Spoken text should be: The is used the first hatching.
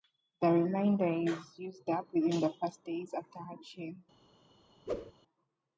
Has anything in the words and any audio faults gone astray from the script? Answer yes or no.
yes